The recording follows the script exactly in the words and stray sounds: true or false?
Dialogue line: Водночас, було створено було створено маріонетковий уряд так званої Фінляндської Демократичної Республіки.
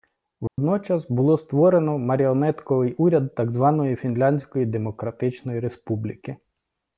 false